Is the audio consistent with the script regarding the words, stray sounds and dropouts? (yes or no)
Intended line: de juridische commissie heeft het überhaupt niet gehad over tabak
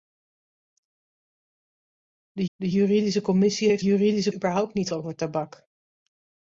no